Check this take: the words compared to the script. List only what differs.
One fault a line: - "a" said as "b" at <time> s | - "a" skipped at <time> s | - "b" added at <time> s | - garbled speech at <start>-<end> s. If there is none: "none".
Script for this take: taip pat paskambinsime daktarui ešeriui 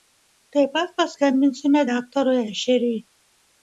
none